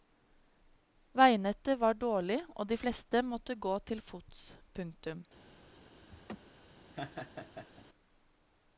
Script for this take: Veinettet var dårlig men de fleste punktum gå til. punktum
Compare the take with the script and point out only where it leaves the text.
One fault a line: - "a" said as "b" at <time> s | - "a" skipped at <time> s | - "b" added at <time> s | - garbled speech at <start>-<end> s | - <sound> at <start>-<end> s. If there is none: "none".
- "men" said as "og" at 2.5 s
- "punktum" said as "måtte" at 3.3 s
- "fots" added at 4.1 s
- laugh at 6.1-6.4 s
- laugh at 6.9-7.8 s